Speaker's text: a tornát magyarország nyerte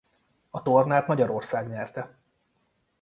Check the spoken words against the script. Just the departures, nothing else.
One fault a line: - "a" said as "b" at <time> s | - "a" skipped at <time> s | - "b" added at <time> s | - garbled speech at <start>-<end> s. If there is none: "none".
none